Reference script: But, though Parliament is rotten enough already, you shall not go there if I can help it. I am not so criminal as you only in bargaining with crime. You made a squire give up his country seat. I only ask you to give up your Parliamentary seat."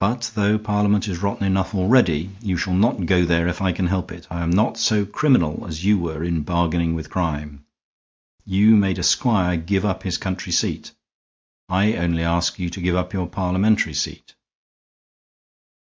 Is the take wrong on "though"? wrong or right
right